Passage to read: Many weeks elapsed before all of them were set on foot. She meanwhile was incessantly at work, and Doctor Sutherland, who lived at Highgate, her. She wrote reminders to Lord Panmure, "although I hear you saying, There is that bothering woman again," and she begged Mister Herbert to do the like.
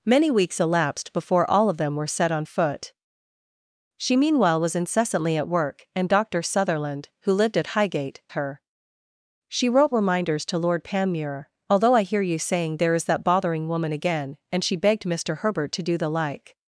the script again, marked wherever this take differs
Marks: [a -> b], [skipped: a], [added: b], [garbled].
Many weeks elapsed before all of them were set on foot. She meanwhile was incessantly at work, and Doctor Sutherland, who lived at Highgate, her. She wrote reminders to Lord Panmure, "although I hear you saying, There is that bothering woman again," and she begged Mister Herbert to do the like.